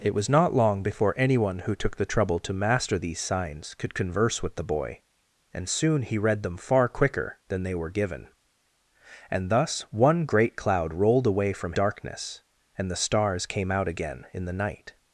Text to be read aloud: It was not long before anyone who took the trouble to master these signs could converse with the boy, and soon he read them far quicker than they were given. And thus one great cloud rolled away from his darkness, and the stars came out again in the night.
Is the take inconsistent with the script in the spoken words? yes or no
yes